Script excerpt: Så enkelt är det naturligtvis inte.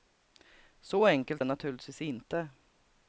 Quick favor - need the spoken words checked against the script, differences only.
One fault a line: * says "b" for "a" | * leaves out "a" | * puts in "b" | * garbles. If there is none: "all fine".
* leaves out "är"